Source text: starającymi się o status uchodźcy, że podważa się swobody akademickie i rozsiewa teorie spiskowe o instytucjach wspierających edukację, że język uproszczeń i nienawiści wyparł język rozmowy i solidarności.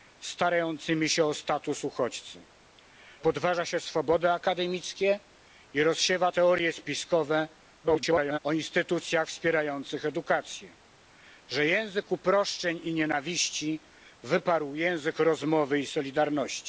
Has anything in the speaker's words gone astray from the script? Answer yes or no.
yes